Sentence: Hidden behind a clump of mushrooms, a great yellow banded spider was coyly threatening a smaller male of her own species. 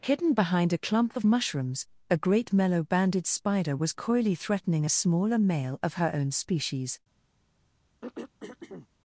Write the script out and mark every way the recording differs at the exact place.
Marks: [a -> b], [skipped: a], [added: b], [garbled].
Hidden behind a clump of mushrooms, a great [yellow -> mellow] banded spider was coyly threatening a smaller male of her own species.